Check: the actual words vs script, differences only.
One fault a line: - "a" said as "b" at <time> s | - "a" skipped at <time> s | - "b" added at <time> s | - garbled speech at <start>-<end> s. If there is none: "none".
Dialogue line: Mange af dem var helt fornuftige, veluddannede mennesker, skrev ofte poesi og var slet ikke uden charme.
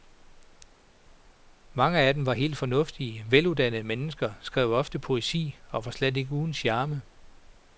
none